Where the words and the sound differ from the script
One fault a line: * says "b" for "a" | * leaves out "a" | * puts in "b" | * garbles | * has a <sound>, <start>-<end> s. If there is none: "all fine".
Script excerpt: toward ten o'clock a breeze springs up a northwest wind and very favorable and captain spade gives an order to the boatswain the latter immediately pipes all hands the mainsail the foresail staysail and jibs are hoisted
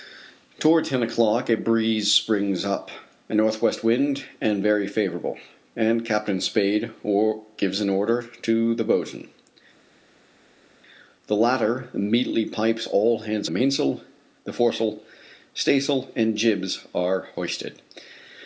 all fine